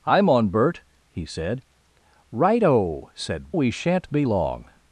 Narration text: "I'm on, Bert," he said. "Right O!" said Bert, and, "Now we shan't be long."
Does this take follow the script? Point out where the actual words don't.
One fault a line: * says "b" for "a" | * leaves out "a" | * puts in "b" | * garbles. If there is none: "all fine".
* leaves out "Bert and Now"